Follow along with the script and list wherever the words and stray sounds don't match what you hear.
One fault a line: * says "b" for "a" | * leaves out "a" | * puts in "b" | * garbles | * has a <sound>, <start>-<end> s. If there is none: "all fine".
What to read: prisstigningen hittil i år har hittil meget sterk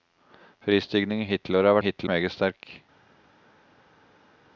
all fine